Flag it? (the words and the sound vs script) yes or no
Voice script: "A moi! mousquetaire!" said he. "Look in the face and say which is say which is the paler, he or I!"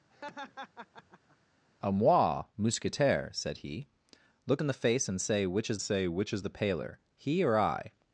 yes